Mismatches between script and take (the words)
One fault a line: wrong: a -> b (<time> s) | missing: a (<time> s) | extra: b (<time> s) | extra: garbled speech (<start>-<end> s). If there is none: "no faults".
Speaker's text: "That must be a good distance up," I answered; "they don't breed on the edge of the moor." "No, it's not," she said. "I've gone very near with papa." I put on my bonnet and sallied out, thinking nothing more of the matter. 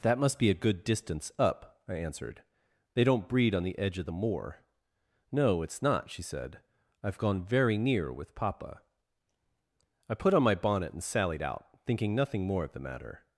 no faults